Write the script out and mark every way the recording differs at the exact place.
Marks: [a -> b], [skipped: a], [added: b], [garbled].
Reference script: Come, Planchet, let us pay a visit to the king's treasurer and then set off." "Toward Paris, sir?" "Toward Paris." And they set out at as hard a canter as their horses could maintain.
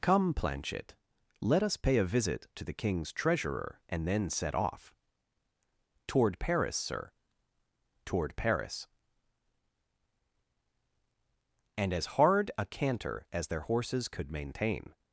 Come, Planchet, let us pay a visit to the king's treasurer and then set off." "Toward Paris, sir?" "Toward Paris." And [skipped: they set out at] as hard a canter as their horses could maintain.